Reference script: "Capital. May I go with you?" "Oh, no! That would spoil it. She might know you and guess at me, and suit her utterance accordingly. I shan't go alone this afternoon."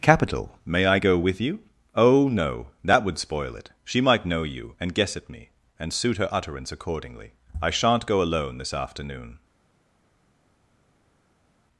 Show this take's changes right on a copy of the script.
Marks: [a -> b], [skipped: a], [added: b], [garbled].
"Capital. May I go with you?" "Oh, no! That would spoil it. She might know you and guess at me, and suit her utterance accordingly. I shan't go alone this afternoon."